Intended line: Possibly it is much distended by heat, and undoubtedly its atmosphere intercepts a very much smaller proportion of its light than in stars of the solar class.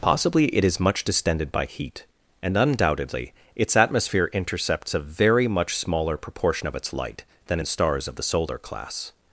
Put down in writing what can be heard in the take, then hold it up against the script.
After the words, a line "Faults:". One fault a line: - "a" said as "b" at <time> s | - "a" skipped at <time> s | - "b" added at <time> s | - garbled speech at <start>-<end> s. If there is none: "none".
Possibly it is much distended by heat, and undoubtedly its atmosphere intercepts a very much smaller proportion of its light than in stars of the solar class.
Faults:
none